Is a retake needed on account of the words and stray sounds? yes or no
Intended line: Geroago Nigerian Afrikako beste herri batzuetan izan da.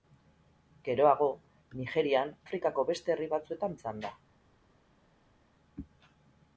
no